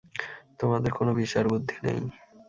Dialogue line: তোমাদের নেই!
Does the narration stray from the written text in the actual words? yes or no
yes